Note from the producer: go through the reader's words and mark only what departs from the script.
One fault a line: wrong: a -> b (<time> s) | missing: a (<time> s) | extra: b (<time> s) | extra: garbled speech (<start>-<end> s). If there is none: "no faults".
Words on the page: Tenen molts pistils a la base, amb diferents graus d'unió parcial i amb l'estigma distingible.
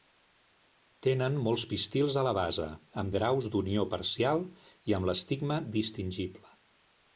missing: diferents (3.1 s)